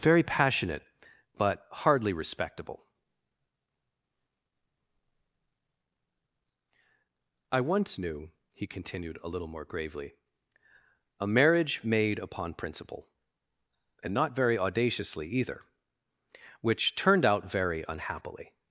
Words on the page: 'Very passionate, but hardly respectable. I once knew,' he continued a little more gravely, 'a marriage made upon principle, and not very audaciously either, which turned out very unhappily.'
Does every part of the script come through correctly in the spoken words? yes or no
yes